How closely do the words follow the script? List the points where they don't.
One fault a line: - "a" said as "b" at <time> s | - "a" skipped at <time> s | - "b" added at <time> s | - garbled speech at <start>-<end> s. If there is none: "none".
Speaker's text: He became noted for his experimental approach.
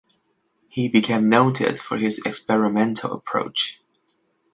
none